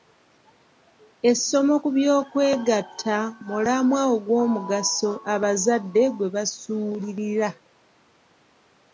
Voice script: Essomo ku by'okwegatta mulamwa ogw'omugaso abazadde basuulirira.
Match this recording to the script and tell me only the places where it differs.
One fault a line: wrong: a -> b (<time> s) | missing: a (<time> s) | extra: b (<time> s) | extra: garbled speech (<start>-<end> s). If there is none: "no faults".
extra: gwe (6.2 s)